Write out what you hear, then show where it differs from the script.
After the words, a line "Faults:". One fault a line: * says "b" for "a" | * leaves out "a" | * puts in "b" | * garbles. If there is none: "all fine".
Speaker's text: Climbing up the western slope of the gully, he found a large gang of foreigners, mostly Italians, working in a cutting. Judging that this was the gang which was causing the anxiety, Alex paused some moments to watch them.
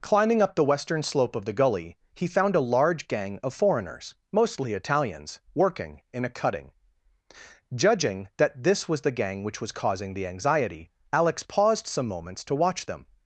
Climbing up the western slope of the gully, he found a large gang of foreigners, mostly Italians, working in a cutting. Judging that this was the gang which was causing the anxiety, Alex paused some moments to watch them.
Faults:
all fine